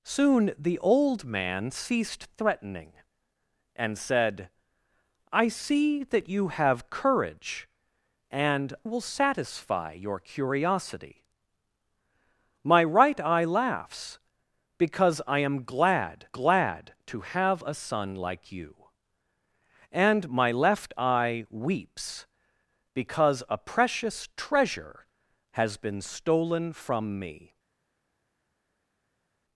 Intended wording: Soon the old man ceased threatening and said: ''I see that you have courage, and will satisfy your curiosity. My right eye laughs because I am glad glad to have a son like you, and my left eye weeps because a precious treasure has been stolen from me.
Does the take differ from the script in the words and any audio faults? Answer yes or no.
no